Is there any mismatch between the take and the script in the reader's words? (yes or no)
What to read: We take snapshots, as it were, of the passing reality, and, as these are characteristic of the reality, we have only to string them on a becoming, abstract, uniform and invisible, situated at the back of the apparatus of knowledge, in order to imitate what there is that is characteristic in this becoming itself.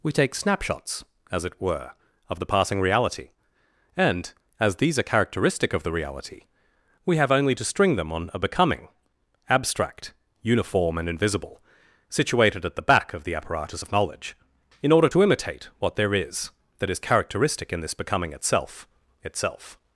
yes